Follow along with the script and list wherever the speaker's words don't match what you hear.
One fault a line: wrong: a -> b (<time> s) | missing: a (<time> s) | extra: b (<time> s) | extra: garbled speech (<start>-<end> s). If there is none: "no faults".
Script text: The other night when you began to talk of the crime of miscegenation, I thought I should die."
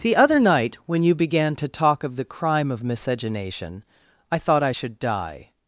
no faults